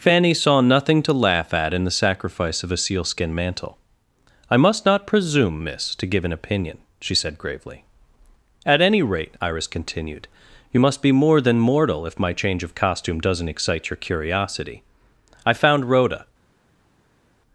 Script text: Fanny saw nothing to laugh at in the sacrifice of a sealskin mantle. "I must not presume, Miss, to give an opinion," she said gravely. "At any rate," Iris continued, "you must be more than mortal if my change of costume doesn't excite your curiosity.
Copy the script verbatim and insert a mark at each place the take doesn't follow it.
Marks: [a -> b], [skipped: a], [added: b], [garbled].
Fanny saw nothing to laugh at in the sacrifice of a sealskin mantle. "I must not presume, Miss, to give an opinion," she said gravely. "At any rate," Iris continued, "you must be more than mortal if my change of costume doesn't excite your curiosity. [added: I found Rhoda]